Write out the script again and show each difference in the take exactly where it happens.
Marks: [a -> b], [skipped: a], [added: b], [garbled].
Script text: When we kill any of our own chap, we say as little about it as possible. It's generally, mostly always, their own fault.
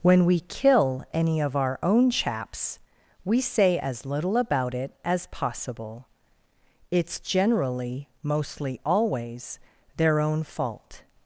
When we kill any of our own [chap, -> chaps] we say as little about it as possible. It's generally, mostly always, their own fault.